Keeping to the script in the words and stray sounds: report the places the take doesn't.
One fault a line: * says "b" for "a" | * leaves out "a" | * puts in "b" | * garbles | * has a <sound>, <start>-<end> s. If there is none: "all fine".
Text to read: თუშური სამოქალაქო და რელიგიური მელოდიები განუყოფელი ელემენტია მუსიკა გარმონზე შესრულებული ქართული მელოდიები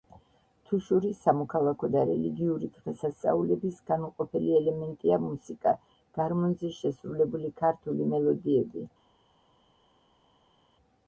* says "დღესასწაულების" for "მელოდიები"